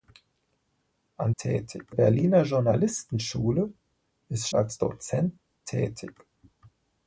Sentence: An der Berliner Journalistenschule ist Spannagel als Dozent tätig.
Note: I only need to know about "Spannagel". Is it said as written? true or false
false